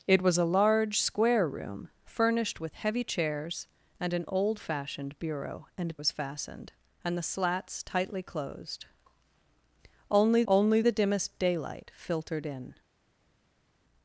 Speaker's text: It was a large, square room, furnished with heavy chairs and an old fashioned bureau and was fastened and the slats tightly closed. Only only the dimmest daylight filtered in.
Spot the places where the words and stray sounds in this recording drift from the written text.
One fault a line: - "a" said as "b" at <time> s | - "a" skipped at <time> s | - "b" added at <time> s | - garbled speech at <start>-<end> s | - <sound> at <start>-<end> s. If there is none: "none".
none